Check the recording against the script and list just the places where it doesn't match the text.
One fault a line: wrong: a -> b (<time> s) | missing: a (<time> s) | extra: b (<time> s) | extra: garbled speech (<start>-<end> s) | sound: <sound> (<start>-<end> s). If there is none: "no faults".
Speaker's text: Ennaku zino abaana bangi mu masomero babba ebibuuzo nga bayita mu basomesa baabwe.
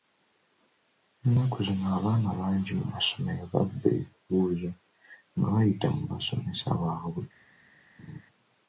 sound: laugh (8.0-8.2 s)